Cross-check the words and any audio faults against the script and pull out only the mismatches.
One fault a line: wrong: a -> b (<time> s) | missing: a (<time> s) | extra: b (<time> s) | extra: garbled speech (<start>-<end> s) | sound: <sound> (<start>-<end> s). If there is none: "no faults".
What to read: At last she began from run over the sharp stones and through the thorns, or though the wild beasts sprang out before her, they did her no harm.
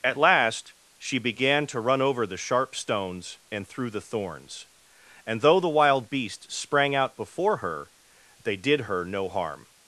wrong: from -> to (1.7 s)
wrong: or -> and (5.3 s)